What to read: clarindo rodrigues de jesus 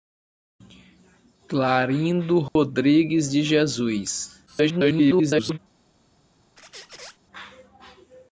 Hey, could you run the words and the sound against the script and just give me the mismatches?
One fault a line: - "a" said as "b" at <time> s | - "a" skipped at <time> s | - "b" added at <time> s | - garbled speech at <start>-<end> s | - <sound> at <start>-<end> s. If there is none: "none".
- dropout at 2.5-2.6 s
- garbled speech at 4.5-5.6 s
- squeak at 6.6-7.2 s